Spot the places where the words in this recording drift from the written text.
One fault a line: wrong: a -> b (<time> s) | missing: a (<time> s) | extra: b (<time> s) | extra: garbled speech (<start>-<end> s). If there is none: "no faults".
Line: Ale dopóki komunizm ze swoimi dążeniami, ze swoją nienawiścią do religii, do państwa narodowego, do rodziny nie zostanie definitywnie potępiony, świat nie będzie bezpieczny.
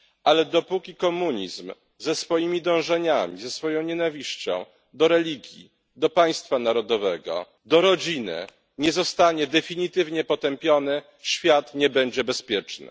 no faults